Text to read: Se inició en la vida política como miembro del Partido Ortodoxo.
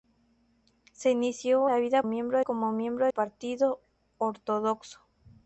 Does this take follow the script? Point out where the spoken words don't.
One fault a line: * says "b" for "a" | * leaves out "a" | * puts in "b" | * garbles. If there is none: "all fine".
* leaves out "en"
* says "miembro" for "política"
* leaves out "del"